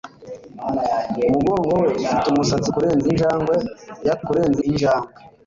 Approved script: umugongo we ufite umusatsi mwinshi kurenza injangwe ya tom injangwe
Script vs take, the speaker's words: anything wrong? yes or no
yes